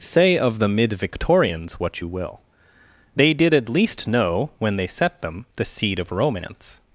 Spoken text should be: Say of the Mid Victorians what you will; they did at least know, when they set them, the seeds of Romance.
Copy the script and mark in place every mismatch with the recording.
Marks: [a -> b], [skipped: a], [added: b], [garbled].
Say of the Mid Victorians what you will; they did at least know, when they set them, the [seeds -> seed] of Romance.